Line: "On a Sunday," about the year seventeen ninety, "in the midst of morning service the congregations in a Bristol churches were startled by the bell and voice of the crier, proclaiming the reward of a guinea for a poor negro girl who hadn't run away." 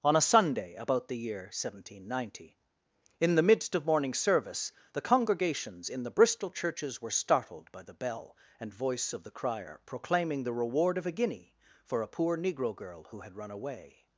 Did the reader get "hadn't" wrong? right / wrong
wrong